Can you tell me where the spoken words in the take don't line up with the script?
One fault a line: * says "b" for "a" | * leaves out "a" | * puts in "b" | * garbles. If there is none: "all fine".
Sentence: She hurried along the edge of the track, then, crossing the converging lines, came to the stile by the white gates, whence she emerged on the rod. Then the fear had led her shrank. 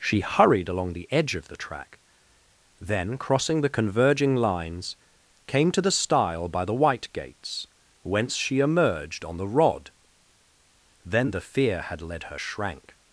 all fine